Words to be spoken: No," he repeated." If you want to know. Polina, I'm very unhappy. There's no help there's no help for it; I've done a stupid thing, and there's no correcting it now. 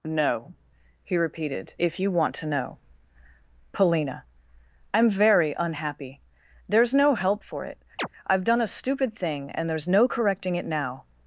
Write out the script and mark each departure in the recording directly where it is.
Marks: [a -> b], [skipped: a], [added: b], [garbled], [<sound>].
No," he repeated." If you want to know. Polina, I'm very unhappy. There's no help [skipped: there's no help] for it; [chirp] I've done a stupid thing, and there's no correcting it now.